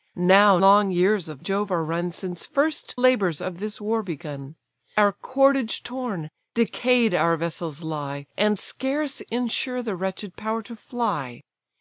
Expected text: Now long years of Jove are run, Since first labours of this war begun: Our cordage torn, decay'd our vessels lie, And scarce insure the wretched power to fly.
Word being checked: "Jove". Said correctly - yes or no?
yes